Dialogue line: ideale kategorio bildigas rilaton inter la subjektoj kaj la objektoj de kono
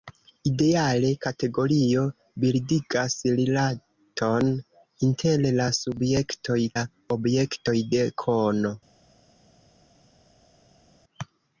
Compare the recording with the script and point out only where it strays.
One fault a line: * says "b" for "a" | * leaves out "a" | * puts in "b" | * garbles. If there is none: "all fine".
* leaves out "kaj"